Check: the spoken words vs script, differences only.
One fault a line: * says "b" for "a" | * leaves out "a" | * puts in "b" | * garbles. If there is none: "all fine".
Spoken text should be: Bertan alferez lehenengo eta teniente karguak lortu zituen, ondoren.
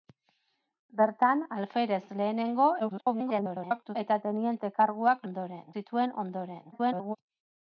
* garbles
* says "ondoren" for "lortu"
* garbles